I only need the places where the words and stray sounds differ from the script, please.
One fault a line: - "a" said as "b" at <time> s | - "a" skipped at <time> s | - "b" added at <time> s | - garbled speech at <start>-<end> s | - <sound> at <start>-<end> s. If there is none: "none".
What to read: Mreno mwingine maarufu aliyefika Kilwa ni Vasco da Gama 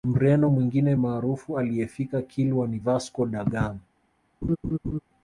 - laugh at 4.4-5.0 s